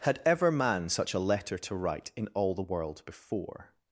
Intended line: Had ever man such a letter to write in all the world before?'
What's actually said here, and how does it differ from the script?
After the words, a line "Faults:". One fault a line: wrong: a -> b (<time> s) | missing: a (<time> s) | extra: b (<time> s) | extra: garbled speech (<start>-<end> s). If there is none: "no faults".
Had ever man such a letter to write in all the world before?'
Faults:
no faults